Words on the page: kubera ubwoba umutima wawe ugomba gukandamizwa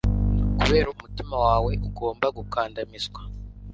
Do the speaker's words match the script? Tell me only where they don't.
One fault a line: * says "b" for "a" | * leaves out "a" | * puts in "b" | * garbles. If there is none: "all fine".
* leaves out "ubwoba"